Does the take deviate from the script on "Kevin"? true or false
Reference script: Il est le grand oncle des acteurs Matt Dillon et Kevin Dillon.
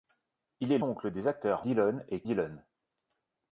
true